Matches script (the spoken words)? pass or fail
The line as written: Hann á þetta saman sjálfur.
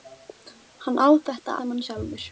pass